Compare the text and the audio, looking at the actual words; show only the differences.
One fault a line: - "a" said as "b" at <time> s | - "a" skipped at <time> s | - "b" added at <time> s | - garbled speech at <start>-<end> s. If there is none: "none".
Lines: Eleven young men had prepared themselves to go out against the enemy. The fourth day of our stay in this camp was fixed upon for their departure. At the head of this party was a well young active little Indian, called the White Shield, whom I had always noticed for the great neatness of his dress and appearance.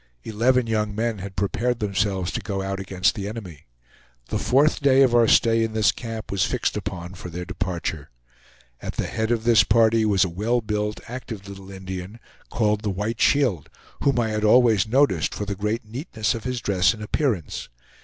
- "young" said as "built" at 10.6 s